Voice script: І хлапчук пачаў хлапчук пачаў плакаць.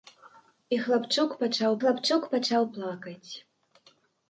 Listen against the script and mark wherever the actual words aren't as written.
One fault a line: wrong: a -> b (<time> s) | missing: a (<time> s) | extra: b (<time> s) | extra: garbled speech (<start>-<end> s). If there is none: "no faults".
no faults